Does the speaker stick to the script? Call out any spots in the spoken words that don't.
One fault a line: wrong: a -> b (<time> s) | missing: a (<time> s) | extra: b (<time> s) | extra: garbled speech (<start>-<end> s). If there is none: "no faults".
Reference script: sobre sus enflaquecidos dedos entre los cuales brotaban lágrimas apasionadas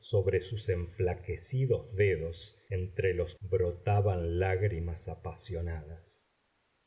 missing: cuales (3.4 s)